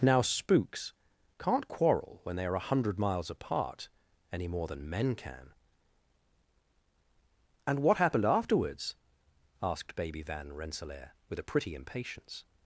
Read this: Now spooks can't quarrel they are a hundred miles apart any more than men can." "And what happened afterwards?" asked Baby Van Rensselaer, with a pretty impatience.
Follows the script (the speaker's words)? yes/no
no